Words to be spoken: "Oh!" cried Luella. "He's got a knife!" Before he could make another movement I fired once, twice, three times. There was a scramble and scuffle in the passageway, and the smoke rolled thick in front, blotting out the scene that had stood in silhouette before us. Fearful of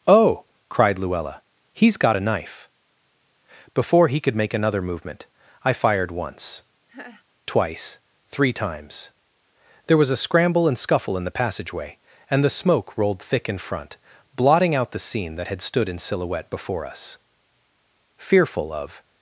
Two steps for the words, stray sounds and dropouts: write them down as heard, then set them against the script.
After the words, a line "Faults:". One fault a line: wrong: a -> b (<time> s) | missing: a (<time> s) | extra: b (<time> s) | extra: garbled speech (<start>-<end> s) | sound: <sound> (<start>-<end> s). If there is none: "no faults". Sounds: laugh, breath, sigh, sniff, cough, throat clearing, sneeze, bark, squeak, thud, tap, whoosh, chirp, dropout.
"Oh!" cried Luella. "He's got a knife!" Before he could make another movement I fired once, twice, three times. There was a scramble and scuffle in the passageway, and the smoke rolled thick in front, blotting out the scene that had stood in silhouette before us. Fearful of
Faults:
sound: laugh (6.9-7.2 s)